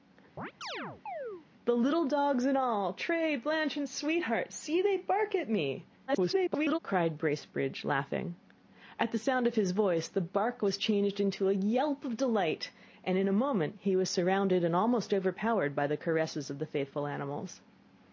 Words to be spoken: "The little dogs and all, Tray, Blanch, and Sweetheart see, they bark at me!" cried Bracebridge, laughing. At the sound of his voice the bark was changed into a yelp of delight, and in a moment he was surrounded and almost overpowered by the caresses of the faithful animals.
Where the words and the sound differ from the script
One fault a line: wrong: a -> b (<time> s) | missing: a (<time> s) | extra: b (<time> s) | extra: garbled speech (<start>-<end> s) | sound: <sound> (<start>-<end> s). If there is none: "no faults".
sound: chirp (0.4-1.5 s)
extra: garbled speech (6.1-6.8 s)